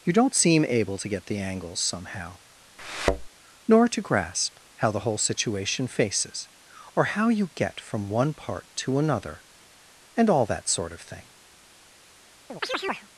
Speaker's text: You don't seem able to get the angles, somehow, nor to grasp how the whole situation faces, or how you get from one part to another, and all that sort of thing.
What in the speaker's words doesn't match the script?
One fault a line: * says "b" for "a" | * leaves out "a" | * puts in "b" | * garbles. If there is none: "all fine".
all fine